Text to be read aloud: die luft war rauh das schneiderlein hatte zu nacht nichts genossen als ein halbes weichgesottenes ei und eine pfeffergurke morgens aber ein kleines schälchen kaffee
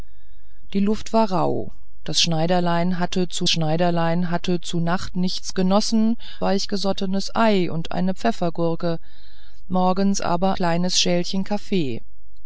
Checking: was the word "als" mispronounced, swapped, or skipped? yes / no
yes